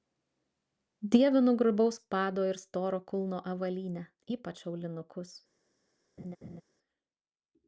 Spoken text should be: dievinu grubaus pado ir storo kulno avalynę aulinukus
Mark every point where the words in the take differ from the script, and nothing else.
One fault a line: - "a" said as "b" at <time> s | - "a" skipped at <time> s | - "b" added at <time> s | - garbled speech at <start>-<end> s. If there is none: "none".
- "ypač" added at 4.4 s